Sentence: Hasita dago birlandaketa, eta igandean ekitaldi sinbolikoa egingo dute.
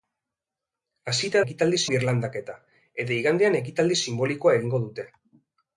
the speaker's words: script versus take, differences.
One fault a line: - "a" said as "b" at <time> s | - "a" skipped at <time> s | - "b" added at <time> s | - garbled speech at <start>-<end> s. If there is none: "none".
- "dago" said as "ekitaldi" at 1.4 s